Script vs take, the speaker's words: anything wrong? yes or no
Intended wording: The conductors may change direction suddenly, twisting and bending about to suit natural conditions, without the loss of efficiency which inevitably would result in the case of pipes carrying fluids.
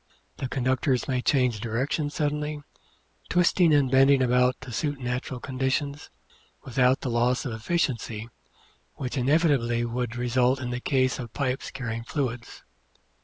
no